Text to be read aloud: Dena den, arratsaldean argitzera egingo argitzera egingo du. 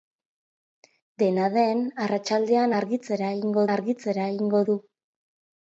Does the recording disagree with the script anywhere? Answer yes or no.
no